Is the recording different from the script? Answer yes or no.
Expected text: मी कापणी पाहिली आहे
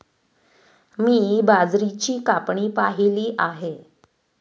yes